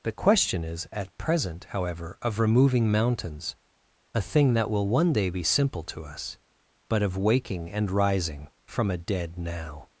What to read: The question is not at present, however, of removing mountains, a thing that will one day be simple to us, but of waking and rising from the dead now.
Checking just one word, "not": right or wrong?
wrong